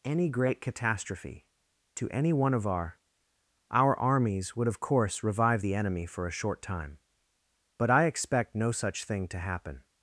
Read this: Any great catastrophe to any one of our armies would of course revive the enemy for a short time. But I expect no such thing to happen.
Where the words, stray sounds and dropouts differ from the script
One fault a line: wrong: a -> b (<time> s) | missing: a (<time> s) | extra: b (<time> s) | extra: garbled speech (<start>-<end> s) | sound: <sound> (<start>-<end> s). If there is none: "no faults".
extra: our (3.7 s)